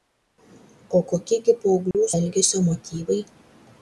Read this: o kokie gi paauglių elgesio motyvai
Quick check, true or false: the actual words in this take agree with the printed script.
true